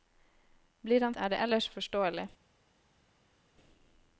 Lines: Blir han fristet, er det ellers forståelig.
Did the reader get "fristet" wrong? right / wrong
wrong